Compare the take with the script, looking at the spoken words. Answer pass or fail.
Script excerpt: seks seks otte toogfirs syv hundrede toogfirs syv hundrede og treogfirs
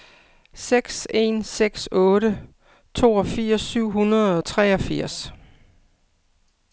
fail